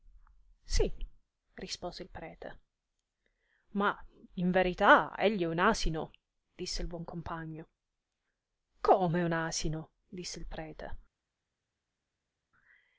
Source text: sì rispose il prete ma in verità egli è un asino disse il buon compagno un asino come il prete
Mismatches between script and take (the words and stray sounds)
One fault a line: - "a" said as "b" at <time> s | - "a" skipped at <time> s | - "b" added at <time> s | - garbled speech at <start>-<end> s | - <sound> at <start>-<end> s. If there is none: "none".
- "come" added at 8.8 s
- "come" said as "disse" at 10.1 s